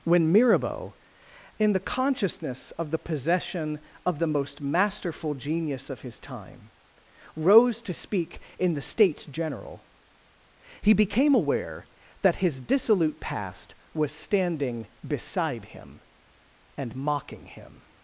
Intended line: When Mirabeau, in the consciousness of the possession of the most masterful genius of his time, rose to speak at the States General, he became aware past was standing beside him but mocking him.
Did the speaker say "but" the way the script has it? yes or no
no